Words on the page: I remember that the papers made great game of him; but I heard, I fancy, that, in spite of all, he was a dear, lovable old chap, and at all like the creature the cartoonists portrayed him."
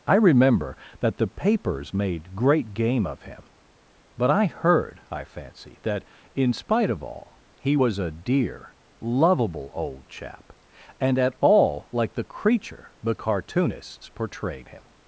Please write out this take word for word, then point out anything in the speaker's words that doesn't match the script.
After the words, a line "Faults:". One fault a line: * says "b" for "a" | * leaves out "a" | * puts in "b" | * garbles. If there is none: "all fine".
I remember that the papers made great game of him; but I heard, I fancy, that, in spite of all, he was a dear, lovable old chap, and at all like the creature the cartoonists portrayed him."
Faults:
all fine